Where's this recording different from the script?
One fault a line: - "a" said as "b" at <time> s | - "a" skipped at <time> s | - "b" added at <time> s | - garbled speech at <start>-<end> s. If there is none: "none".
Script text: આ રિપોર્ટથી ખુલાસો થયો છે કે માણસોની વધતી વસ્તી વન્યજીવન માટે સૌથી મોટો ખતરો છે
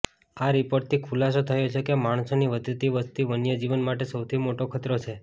none